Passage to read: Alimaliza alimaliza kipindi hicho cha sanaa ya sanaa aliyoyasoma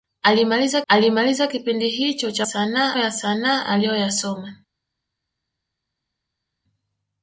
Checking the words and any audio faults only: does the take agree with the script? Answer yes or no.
yes